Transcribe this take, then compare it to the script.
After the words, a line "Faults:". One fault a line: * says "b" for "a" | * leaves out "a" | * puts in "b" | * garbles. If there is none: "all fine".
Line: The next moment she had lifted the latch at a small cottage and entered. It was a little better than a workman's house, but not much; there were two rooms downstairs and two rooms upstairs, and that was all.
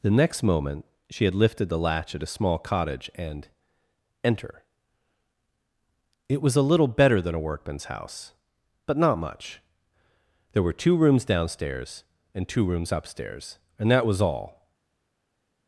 The next moment she had lifted the latch at a small cottage and enter. It was a little better than a workman's house, but not much; there were two rooms downstairs and two rooms upstairs, and that was all.
Faults:
* says "enter" for "entered"